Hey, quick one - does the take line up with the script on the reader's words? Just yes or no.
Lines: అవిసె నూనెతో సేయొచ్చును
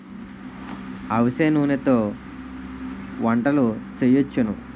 no